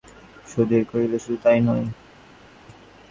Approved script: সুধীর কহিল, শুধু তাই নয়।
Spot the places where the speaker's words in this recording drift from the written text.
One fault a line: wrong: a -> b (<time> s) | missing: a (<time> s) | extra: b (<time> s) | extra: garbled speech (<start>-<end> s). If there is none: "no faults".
no faults